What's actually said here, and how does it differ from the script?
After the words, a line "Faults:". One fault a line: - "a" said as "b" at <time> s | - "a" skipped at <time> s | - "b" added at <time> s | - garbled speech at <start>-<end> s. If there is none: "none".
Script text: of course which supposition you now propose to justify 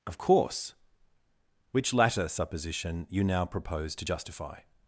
of course which latter supposition you now propose to justify
Faults:
- "latter" added at 1.9 s